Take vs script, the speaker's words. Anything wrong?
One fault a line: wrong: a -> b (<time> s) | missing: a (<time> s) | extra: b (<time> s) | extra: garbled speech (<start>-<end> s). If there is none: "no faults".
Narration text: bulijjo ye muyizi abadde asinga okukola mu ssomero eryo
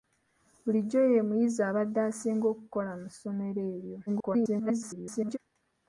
extra: garbled speech (4.1-5.4 s)